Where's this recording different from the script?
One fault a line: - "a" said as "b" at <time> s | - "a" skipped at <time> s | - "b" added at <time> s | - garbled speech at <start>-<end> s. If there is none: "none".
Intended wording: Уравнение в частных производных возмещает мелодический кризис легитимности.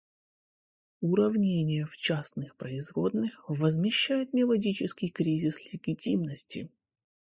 none